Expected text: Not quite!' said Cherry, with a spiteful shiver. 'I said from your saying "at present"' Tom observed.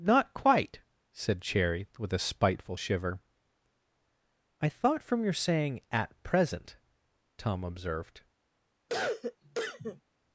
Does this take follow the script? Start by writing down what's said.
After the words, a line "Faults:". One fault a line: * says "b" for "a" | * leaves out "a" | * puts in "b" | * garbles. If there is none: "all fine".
Not quite!' said Cherry, with a spiteful shiver. 'I thought from your saying "at present"' Tom observed.
Faults:
* says "thought" for "said"